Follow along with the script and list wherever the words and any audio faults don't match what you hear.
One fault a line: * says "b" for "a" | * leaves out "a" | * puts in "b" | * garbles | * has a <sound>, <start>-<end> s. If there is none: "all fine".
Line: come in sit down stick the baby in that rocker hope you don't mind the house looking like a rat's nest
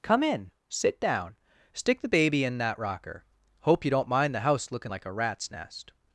all fine